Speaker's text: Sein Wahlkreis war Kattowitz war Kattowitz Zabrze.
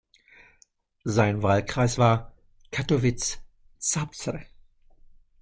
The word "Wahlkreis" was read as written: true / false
true